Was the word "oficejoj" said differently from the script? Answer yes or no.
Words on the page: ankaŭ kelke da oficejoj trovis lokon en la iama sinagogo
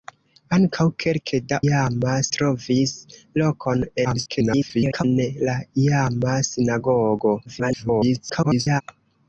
yes